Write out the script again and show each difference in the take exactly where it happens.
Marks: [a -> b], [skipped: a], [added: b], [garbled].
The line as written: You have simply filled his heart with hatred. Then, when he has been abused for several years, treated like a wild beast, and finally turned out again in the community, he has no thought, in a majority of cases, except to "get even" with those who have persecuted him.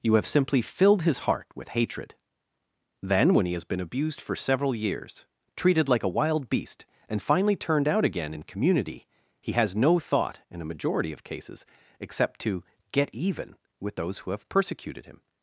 You have simply filled his heart with hatred. Then, when he has been abused for several years, treated like a wild beast, and finally turned out again in [skipped: the] community, he has no thought, in a majority of cases, except to "get even" with those who have persecuted him.